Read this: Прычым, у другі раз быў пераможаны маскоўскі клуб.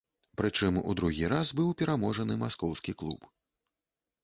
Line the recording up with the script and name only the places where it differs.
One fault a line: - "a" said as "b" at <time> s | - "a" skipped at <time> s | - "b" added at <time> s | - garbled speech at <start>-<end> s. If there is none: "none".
none